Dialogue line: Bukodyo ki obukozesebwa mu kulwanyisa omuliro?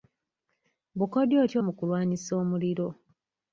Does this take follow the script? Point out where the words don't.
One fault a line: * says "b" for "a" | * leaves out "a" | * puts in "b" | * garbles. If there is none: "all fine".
* leaves out "obukozesebwa"